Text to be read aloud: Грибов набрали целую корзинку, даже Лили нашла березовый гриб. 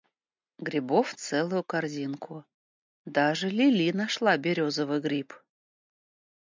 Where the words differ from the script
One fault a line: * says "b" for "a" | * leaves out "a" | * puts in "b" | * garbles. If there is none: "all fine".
* leaves out "набрали"